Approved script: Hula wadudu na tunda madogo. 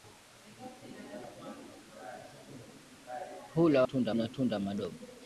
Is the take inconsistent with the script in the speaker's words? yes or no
yes